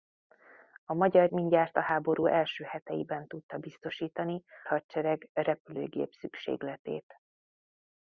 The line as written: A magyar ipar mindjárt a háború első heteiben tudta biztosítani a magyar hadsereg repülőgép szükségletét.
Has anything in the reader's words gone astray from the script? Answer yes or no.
yes